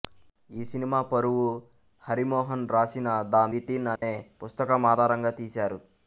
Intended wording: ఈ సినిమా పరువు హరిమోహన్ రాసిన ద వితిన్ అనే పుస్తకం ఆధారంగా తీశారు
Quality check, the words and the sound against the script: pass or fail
fail